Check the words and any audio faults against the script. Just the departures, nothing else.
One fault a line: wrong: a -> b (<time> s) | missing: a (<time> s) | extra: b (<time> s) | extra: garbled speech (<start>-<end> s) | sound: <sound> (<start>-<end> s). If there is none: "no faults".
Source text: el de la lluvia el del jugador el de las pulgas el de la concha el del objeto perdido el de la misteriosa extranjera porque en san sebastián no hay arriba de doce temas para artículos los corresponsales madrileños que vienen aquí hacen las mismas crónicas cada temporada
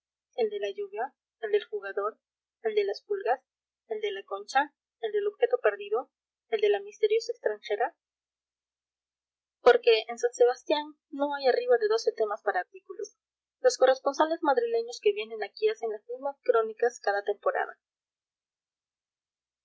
no faults